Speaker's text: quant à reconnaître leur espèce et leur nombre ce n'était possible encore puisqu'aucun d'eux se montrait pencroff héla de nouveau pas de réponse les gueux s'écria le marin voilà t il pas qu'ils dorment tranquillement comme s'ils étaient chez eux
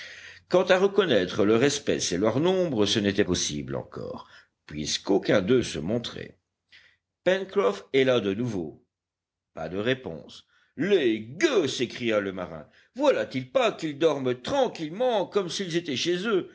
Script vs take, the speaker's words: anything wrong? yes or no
no